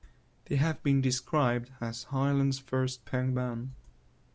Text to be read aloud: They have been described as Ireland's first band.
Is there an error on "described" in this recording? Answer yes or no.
no